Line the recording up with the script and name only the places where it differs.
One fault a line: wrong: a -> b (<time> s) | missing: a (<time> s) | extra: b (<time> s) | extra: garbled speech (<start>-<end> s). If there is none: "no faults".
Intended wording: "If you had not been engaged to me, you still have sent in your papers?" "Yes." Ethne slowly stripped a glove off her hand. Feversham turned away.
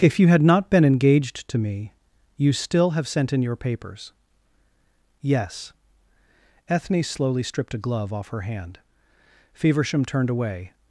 no faults